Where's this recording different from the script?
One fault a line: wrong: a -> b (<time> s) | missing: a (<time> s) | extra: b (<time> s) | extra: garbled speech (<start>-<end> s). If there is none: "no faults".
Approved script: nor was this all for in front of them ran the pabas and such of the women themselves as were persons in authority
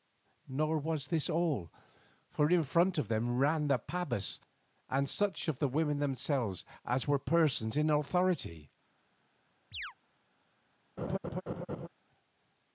no faults